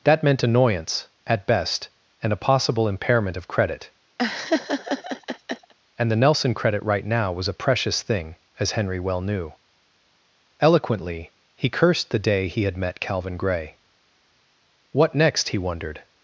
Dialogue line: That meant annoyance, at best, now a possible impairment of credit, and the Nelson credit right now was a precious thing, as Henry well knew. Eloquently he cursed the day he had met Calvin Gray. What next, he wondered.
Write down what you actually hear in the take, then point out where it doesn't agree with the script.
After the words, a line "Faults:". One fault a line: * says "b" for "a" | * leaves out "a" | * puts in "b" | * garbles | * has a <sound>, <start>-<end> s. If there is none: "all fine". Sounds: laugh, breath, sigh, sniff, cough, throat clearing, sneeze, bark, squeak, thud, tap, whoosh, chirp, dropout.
That meant annoyance, at best, and a possible impairment of credit, and the Nelson credit right now was a precious thing, as Henry well knew. Eloquently he cursed the day he had met Calvin Gray. What next, he wondered.
Faults:
* says "and" for "now"
* has a laugh, 4.2-5.7 s